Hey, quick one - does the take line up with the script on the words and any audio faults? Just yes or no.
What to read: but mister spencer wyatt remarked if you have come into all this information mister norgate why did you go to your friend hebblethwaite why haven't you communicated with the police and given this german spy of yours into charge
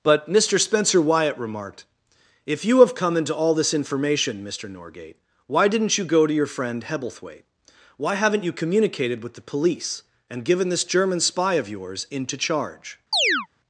no